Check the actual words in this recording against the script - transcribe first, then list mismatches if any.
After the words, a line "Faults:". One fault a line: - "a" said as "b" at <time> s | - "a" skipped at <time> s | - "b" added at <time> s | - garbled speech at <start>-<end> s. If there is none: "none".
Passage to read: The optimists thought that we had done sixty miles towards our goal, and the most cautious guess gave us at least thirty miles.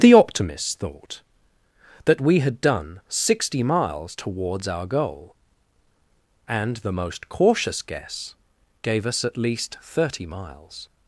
The optimists thought that we had done sixty miles towards our goal, and the most cautious guess gave us at least thirty miles.
Faults:
none